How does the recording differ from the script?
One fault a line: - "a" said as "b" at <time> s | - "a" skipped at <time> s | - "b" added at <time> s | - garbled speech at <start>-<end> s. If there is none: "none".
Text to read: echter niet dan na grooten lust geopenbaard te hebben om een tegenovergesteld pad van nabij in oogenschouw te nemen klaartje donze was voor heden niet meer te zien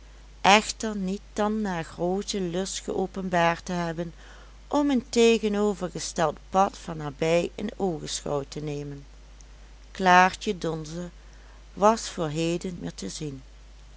- "niet" skipped at 12.8 s